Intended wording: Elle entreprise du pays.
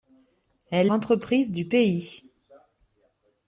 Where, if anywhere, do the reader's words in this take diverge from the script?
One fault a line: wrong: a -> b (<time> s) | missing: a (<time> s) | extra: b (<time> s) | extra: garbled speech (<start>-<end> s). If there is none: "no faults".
no faults